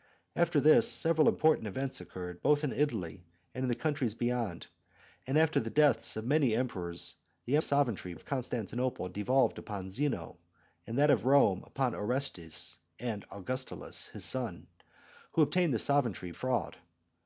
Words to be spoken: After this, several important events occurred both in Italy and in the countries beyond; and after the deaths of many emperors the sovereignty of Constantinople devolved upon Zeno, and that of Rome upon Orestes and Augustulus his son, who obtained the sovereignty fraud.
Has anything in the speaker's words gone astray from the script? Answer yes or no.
no